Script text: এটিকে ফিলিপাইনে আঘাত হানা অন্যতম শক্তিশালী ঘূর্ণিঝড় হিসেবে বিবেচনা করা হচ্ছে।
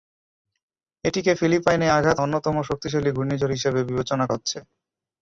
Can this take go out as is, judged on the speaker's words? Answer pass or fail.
fail